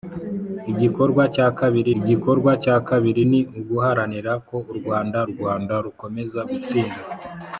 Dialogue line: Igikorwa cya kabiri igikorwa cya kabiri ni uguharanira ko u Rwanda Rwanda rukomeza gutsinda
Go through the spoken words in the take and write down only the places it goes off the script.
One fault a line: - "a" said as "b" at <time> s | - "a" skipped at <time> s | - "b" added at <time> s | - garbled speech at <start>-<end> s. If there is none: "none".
none